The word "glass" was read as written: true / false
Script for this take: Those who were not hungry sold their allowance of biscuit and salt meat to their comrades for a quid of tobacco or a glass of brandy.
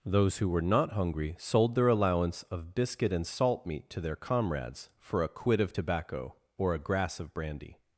false